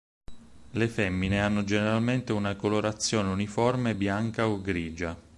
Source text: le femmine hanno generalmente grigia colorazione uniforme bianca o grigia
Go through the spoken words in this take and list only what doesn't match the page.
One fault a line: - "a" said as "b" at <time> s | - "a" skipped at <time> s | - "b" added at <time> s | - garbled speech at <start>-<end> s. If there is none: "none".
- "grigia" said as "una" at 2.3 s